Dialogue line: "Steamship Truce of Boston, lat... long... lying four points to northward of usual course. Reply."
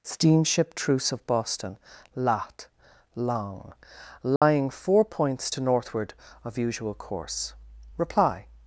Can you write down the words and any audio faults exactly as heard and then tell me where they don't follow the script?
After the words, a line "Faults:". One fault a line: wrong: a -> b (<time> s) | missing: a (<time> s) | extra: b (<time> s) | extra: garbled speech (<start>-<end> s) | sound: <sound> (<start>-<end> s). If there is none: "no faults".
"Steamship Truce of Boston, lat... long... lying four points to northward of usual course. Reply."
Faults:
sound: dropout (4.4-4.4 s)